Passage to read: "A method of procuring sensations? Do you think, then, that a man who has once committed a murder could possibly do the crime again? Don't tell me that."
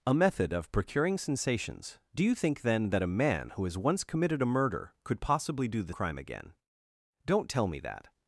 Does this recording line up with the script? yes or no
yes